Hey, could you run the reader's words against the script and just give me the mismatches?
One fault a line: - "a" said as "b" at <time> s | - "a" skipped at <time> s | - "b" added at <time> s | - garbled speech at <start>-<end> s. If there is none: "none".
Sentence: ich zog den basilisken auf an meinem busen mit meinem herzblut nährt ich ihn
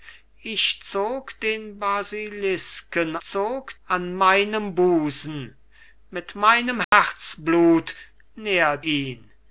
- "auf" said as "zog" at 3.2 s
- "ich" skipped at 8.8 s